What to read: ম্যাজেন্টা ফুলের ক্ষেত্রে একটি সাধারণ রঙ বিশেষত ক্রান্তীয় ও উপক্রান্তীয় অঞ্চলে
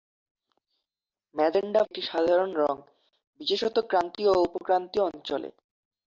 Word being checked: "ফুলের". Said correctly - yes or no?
no